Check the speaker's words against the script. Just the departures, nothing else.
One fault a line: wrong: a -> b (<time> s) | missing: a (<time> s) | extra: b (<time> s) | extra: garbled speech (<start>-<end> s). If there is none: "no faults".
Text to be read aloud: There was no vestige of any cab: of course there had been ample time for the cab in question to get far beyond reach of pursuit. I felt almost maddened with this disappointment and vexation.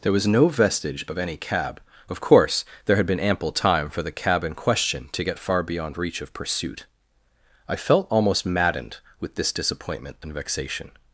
no faults